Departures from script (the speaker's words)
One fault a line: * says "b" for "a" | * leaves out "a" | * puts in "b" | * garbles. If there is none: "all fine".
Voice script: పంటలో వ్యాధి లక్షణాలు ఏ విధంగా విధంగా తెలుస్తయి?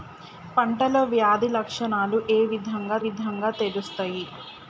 all fine